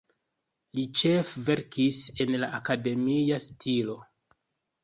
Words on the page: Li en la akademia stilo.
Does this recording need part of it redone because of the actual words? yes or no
yes